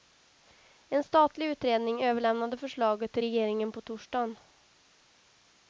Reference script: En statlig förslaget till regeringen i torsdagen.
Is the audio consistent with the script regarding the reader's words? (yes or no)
no